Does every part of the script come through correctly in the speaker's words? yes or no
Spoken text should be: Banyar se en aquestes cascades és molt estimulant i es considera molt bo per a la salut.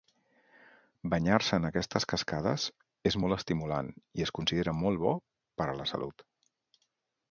yes